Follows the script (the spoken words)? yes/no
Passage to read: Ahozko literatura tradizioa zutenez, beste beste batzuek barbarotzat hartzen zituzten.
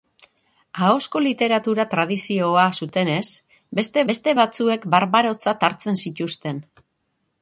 yes